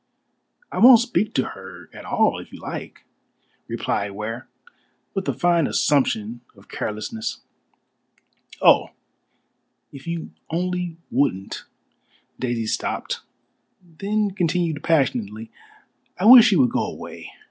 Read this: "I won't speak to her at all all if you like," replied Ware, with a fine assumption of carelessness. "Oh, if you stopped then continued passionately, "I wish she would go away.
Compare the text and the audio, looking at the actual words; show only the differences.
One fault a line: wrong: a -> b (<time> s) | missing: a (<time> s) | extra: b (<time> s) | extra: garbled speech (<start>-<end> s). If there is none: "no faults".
missing: all (2.4 s)
extra: only wouldn't Daisy (10.5 s)